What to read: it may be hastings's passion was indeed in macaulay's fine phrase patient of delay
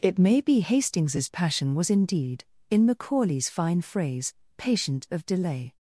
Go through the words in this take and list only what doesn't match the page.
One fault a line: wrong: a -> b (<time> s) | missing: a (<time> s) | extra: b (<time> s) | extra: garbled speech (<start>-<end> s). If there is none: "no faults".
no faults